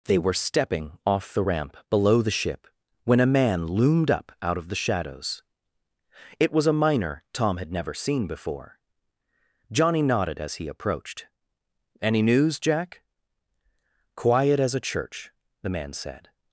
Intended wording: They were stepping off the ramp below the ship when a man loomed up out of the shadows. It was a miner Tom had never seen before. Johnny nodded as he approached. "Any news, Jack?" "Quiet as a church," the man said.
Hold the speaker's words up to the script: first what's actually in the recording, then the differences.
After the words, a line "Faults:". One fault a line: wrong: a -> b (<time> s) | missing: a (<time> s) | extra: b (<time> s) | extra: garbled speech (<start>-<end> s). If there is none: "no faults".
They were stepping off the ramp below the ship when a man loomed up out of the shadows. It was a miner Tom had never seen before. Johnny nodded as he approached. "Any news, Jack?" "Quiet as a church," the man said.
Faults:
no faults